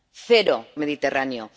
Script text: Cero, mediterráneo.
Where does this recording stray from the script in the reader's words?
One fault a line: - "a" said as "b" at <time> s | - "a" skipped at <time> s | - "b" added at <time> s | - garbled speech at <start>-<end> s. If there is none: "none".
none